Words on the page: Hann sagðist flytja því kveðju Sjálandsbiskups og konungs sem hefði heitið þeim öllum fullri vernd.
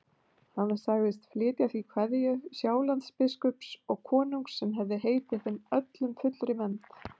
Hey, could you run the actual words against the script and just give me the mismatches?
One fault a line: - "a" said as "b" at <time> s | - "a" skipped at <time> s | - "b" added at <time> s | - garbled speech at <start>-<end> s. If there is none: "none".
none